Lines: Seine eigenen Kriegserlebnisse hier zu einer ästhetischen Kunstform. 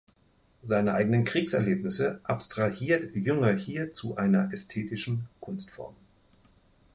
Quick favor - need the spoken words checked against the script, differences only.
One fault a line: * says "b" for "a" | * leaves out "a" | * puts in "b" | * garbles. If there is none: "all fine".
* puts in "abstrahiert Jünger"